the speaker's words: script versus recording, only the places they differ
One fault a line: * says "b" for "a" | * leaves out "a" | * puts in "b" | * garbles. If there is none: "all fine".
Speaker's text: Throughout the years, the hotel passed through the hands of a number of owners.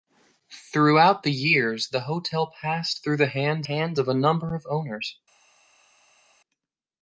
* puts in "hands"